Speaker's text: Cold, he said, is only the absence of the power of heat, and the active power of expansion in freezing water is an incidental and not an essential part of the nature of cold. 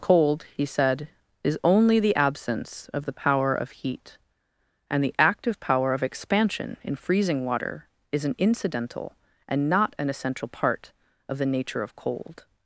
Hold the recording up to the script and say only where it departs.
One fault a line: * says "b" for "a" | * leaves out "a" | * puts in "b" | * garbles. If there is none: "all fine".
all fine